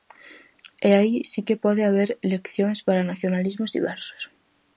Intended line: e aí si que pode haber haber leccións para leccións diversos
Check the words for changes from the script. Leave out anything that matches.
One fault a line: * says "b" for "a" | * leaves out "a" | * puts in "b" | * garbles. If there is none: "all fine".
* leaves out "haber"
* says "nacionalismos" for "leccións"